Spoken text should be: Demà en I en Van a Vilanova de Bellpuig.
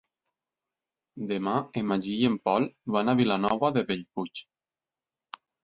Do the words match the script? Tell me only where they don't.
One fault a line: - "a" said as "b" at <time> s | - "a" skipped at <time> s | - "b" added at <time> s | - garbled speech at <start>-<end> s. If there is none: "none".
- "Magí" added at 1.9 s
- "Pol" added at 2.5 s